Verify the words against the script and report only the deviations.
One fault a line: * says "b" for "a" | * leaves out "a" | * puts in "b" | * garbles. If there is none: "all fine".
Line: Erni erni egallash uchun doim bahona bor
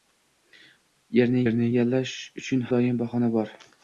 all fine